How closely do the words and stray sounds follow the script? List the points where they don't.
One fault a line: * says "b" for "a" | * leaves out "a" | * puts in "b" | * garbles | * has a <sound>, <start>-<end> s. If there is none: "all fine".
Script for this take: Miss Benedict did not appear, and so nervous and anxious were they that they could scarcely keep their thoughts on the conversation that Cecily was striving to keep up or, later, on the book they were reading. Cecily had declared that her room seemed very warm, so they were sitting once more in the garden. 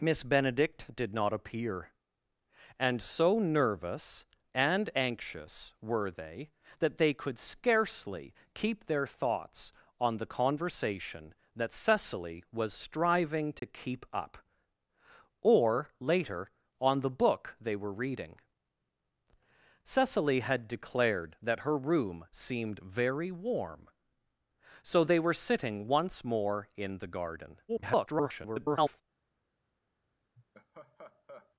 * has a dropout, 13.6-13.6 s
* garbles
* has a laugh, 30.4-31.6 s